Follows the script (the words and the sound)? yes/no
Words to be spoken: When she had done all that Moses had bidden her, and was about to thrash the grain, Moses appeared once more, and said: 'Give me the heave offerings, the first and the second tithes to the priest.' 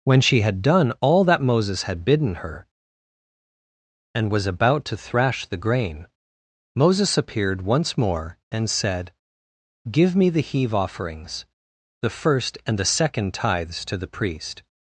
yes